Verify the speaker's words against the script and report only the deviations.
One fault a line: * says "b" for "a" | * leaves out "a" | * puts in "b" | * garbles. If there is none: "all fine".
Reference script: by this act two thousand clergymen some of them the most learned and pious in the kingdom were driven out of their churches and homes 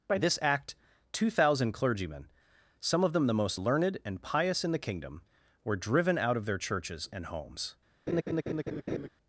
all fine